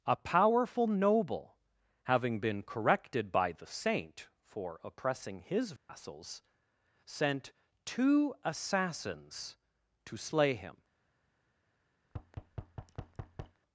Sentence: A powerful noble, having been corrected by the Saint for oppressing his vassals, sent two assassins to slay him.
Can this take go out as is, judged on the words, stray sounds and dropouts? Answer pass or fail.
fail